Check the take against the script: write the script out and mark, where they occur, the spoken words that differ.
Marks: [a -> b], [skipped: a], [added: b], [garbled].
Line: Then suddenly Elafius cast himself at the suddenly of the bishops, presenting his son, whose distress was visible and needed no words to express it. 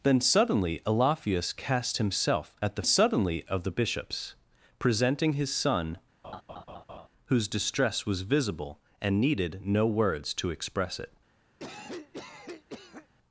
Then suddenly Elafius cast himself at the suddenly of the bishops, presenting his son, whose distress was visible and needed no words to express it.